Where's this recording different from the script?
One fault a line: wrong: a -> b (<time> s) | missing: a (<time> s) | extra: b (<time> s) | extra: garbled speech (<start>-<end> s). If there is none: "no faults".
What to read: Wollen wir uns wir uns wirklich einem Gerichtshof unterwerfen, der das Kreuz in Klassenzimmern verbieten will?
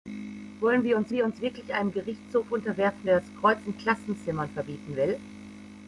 no faults